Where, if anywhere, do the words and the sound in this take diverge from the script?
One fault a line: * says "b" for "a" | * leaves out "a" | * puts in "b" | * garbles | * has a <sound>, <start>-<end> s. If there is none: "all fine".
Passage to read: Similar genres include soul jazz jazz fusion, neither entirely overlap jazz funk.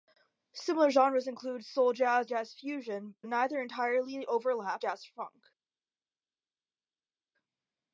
all fine